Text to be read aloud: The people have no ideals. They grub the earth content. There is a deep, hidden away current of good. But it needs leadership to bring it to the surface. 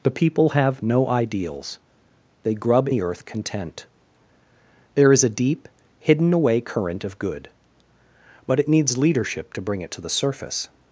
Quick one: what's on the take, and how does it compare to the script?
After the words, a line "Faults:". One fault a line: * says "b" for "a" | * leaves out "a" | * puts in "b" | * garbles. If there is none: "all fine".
The people have no ideals. They grub the earth content. There is a deep, hidden away current of good. But it needs leadership to bring it to the surface.
Faults:
all fine